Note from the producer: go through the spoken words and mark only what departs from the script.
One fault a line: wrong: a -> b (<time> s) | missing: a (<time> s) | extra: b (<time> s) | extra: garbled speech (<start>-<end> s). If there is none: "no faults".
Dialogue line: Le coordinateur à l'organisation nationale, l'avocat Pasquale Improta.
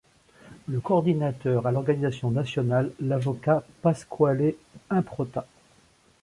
no faults